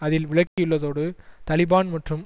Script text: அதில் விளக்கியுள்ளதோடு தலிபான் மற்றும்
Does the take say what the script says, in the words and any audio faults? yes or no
no